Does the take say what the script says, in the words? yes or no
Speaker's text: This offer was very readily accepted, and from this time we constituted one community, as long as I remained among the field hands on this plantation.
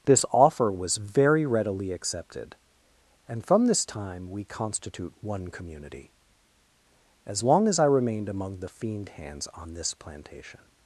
no